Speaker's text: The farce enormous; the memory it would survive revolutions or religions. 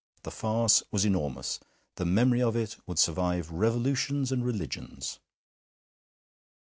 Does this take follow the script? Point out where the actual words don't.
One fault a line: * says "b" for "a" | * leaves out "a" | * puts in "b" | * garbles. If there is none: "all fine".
* puts in "was"
* puts in "of"
* says "and" for "or"